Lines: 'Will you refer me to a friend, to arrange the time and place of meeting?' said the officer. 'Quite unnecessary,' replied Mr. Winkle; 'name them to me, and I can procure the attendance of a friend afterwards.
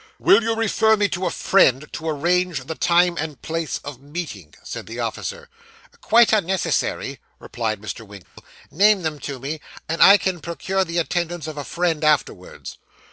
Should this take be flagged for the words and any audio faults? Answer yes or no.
yes